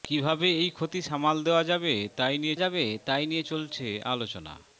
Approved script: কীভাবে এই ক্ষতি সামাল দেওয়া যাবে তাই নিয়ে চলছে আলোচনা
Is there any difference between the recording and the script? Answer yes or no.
yes